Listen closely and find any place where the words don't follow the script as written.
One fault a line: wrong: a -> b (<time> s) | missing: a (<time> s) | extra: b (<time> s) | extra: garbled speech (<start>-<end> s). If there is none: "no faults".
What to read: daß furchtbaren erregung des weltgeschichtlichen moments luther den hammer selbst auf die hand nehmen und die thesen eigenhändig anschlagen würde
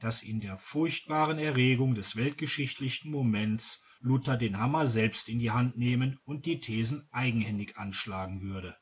extra: in der (0.2 s)
wrong: auf -> in (5.3 s)